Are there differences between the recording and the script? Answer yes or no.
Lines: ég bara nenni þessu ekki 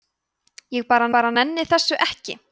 yes